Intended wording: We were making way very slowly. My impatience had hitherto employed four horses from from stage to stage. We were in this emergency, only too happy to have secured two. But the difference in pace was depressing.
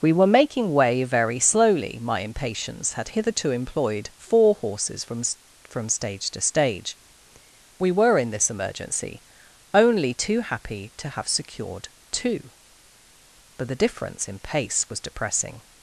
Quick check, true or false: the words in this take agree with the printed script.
true